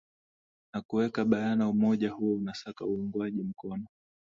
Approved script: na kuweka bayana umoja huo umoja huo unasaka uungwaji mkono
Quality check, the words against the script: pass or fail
fail